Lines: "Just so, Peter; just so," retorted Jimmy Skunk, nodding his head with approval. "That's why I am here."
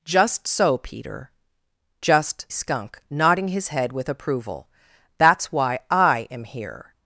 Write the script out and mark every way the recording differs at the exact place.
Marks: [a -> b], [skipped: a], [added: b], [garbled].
"Just so, Peter; just [skipped: so," retorted Jimmy] Skunk, nodding his head with approval. "That's why I am here."